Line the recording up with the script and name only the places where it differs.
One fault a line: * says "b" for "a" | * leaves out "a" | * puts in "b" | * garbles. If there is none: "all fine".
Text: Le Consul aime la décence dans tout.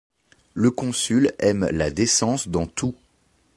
all fine